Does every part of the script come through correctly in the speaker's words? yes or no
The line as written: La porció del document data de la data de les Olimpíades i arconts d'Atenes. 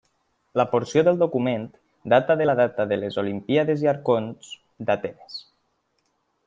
yes